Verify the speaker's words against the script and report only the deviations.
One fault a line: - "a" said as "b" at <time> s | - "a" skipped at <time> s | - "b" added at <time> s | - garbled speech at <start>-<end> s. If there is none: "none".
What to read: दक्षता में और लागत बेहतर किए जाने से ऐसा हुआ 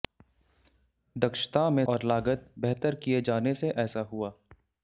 none